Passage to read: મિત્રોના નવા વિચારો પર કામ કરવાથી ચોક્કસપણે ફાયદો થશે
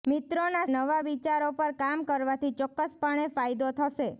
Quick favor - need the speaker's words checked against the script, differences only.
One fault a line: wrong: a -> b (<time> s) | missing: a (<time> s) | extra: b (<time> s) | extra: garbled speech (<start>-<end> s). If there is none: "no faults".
no faults